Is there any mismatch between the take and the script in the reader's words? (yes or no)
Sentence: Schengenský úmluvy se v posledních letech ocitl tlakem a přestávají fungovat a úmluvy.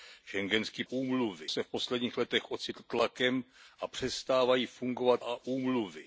no